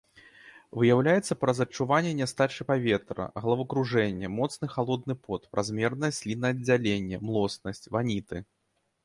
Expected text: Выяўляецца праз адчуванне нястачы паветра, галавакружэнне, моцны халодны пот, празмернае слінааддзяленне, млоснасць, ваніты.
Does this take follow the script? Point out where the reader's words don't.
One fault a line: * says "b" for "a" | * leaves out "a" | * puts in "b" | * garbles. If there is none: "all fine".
all fine